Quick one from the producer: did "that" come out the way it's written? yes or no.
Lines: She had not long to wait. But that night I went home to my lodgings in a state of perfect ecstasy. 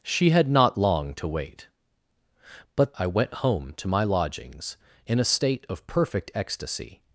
no